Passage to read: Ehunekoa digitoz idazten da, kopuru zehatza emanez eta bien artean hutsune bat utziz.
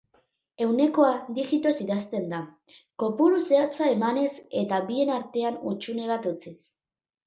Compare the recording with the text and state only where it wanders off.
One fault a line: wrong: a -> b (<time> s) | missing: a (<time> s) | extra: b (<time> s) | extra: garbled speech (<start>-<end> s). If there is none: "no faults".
no faults